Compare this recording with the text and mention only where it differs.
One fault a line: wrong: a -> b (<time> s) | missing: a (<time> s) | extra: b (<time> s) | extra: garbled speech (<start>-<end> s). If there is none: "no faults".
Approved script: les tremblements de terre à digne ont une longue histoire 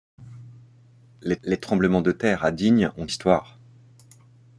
extra: les (1.4 s)
missing: une longue (3.1 s)